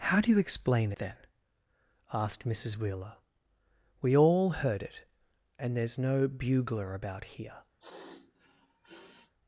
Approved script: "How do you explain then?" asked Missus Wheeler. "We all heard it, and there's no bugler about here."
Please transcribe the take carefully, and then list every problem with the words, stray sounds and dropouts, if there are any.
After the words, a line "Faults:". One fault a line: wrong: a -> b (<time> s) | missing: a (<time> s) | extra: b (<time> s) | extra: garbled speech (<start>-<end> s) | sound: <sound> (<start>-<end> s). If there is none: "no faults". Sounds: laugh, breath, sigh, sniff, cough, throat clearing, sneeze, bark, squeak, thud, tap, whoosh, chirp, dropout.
"How do you explain then?" asked Missus Wheeler. "We all heard it, and there's no bugler about here."
Faults:
sound: sniff (7.8-9.3 s)